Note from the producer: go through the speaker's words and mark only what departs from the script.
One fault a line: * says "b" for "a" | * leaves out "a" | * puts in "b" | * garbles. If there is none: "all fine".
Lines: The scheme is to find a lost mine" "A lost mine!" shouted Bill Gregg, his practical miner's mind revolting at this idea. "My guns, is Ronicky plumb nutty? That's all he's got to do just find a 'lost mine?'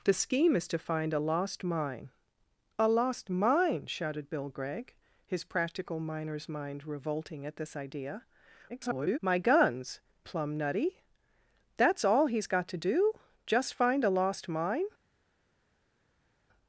* garbles
* leaves out "is Ronicky"